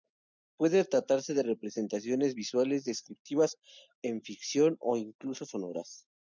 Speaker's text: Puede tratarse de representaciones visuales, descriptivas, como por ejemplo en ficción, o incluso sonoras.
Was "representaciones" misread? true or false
false